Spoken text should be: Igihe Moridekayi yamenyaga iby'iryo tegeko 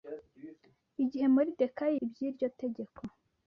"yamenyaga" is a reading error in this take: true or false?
true